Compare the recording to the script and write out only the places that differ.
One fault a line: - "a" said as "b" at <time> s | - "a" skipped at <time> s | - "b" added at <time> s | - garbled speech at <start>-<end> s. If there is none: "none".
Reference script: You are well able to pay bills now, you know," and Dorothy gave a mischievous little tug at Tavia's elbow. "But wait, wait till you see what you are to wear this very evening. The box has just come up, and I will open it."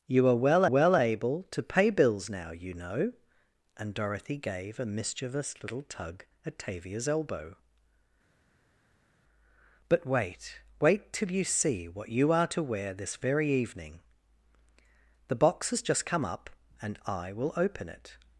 - "well" added at 0.6 s